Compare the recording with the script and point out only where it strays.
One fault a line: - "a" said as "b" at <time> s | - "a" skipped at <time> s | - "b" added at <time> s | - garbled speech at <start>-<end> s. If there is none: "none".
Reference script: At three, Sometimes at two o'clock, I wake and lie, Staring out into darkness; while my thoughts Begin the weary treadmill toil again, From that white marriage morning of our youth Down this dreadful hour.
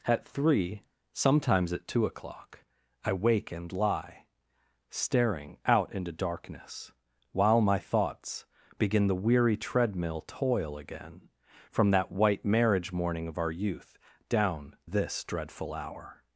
none